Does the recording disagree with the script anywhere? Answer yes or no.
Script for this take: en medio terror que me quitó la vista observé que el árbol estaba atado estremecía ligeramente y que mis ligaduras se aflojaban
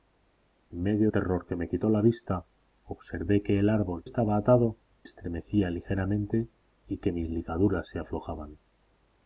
no